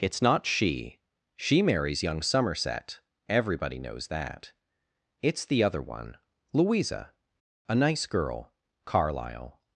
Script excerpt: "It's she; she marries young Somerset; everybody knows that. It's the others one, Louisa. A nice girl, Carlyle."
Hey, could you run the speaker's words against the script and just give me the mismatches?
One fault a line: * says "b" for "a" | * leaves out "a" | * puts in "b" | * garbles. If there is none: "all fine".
* puts in "not"
* says "other" for "others"